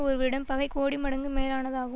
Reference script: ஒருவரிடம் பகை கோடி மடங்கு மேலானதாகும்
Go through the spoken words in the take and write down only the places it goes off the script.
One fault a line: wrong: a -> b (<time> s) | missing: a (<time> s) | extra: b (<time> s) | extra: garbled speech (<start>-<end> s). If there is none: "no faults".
no faults